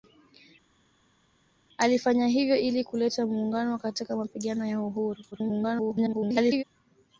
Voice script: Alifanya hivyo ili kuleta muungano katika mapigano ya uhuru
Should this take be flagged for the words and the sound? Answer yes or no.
yes